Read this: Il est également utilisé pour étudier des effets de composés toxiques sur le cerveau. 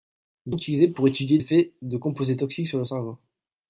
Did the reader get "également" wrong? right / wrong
wrong